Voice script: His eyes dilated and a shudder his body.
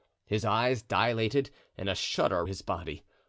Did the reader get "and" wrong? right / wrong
right